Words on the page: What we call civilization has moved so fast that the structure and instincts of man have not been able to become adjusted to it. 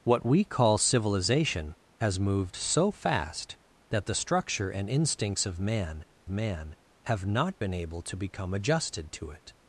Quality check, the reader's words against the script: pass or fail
fail